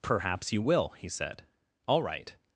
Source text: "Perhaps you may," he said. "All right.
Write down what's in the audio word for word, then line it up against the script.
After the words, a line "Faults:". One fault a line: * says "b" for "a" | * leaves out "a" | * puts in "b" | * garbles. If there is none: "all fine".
"Perhaps you will," he said. "All right.
Faults:
* says "will" for "may"